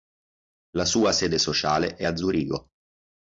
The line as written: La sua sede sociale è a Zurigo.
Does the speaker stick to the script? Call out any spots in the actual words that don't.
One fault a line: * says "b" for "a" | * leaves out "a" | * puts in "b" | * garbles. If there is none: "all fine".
all fine